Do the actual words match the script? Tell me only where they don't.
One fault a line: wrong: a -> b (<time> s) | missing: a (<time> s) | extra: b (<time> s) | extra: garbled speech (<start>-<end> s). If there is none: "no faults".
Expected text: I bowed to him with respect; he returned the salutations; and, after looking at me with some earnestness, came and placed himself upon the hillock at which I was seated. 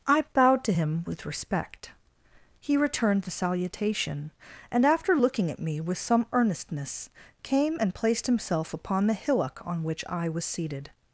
wrong: salutations -> salutation (3.3 s)
wrong: at -> on (9.6 s)